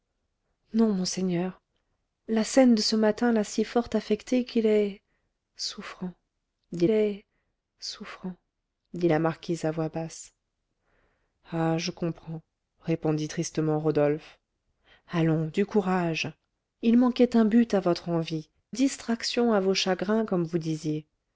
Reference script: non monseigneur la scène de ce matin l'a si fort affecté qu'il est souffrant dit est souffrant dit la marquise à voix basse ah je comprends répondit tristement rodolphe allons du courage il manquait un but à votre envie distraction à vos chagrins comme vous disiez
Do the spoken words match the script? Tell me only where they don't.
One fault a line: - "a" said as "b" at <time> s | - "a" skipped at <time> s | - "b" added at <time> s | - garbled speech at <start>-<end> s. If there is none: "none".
none